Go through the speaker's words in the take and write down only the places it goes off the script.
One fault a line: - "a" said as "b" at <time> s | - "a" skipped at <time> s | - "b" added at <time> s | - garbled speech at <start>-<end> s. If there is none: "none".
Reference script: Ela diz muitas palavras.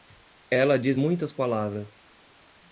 none